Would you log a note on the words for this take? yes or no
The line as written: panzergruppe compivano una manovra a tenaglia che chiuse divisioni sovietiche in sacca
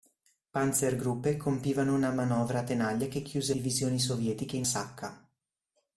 no